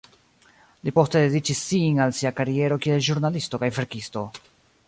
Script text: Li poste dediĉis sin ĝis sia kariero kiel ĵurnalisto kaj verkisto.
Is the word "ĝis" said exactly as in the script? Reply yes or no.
no